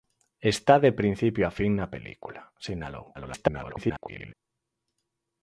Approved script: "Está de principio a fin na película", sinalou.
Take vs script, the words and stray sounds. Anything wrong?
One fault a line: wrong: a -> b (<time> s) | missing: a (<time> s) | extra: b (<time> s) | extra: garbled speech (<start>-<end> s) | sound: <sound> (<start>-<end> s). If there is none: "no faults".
extra: garbled speech (3.1-4.3 s)